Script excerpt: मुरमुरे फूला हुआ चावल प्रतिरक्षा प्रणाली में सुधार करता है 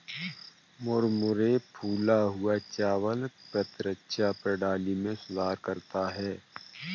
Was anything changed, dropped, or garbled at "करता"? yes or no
no